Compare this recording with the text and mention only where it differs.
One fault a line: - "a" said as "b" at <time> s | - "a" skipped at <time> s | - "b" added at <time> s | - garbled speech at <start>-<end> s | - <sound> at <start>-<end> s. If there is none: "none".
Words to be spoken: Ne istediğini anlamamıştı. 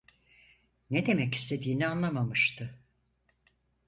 - "demek" added at 1.1 s